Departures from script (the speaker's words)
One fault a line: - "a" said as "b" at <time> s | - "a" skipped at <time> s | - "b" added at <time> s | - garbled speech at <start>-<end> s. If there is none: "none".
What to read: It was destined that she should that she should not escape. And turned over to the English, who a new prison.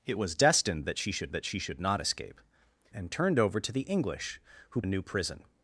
none